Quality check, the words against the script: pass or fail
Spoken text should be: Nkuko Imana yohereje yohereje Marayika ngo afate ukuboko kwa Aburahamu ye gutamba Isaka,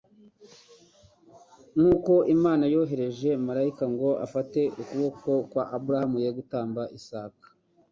fail